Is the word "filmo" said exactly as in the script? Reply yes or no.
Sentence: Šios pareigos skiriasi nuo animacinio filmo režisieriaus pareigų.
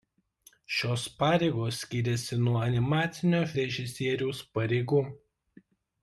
no